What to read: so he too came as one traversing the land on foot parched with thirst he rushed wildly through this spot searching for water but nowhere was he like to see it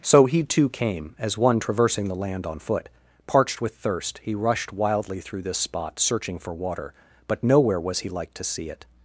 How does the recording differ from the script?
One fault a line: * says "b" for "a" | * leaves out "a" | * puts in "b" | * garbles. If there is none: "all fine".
all fine